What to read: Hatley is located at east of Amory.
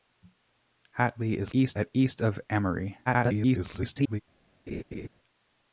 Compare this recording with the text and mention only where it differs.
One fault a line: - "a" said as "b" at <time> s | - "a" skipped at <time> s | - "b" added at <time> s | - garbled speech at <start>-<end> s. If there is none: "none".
- "located" said as "east" at 1.5 s
- garbled speech at 3.1-4.2 s